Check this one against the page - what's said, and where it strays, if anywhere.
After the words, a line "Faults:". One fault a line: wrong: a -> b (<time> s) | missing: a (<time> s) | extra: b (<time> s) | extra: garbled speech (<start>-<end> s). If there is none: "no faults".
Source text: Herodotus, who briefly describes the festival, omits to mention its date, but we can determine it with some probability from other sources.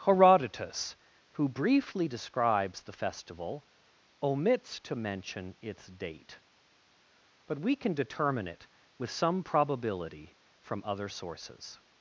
Herodotus, who briefly describes the festival, omits to mention its date, but we can determine it with some probability from other sources.
Faults:
no faults